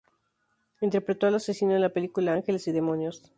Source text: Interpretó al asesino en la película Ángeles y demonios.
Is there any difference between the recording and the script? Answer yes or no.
no